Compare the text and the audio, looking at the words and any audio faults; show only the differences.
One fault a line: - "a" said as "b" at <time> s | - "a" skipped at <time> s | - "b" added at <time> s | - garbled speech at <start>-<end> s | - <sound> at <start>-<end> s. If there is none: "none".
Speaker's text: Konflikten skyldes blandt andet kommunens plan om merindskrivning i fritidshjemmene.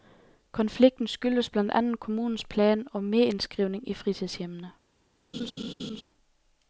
- laugh at 5.3-6.0 s